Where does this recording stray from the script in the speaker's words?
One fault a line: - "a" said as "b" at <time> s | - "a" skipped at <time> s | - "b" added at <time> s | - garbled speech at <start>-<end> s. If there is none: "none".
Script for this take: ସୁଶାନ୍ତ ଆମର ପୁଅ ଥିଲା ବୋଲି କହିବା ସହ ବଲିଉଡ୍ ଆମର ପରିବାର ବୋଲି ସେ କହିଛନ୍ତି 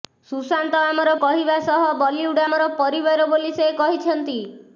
- "ପୁଅ ଥିଲା ବୋଲି" skipped at 1.1 s